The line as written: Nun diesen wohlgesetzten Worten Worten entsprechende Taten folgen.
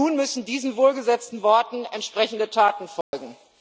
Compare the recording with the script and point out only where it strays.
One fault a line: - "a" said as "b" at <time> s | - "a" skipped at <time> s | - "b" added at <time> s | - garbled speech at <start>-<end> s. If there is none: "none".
- "müssen" added at 0.1 s
- "Worten" skipped at 1.9 s